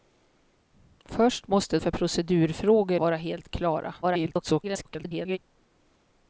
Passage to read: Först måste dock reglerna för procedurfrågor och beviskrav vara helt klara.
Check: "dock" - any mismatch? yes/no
yes